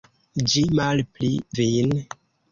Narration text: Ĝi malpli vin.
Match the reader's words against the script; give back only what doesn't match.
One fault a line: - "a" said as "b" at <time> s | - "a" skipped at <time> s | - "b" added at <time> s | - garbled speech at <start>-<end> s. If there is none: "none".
none